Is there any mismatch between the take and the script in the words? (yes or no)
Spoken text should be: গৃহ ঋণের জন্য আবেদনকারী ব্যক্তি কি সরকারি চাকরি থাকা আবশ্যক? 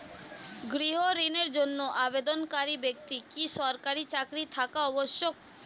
no